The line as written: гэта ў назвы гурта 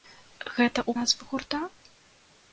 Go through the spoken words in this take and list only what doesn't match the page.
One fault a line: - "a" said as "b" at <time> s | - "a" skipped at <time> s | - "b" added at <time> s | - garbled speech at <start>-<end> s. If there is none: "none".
none